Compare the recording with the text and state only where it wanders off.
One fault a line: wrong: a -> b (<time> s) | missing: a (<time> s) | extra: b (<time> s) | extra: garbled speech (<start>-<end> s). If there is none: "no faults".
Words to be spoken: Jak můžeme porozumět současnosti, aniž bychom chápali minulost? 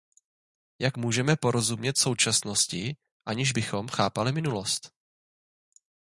no faults